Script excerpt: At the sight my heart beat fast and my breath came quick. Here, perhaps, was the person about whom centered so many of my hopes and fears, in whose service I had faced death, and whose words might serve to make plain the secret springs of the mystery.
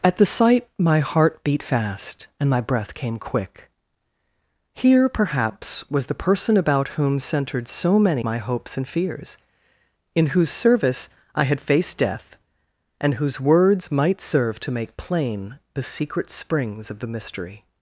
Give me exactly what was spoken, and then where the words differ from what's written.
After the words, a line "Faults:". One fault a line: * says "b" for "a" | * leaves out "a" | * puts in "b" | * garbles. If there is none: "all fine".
At the sight my heart beat fast and my breath came quick. Here, perhaps, was the person about whom centered so many my hopes and fears, in whose service I had faced death, and whose words might serve to make plain the secret springs of the mystery.
Faults:
* leaves out "of"